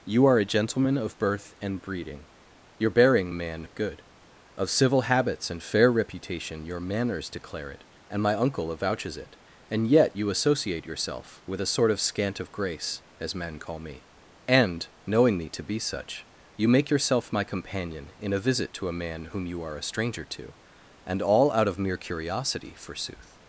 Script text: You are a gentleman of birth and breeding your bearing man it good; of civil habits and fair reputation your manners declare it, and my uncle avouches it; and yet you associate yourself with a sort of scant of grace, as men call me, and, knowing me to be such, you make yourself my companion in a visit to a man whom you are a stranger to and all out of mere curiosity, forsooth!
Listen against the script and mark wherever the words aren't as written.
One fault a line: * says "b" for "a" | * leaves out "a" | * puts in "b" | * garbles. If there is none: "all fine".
all fine